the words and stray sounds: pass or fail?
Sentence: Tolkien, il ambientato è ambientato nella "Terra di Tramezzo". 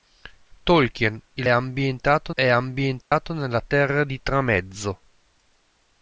fail